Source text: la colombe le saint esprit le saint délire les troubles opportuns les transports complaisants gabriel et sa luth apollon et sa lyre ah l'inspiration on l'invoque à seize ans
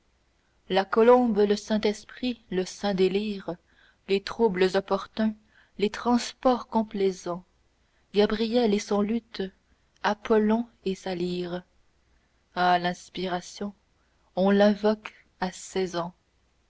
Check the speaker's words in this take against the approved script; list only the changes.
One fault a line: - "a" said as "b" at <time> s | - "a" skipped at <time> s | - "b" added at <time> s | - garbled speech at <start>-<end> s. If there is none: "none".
- "sa" said as "son" at 8.8 s